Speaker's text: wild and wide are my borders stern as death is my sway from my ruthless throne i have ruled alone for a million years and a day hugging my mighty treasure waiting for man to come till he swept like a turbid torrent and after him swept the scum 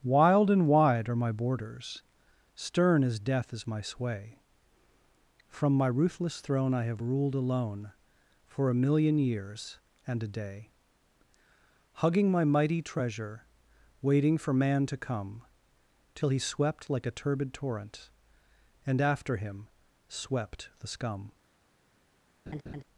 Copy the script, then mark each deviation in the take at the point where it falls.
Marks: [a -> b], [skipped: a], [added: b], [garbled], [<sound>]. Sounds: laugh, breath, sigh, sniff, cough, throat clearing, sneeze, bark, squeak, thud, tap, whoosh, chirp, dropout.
wild and wide are my borders stern as death is my sway from my ruthless throne i have ruled alone for a million years and a day hugging my mighty treasure waiting for man to come till he swept like a turbid torrent and after him swept the scum [laugh]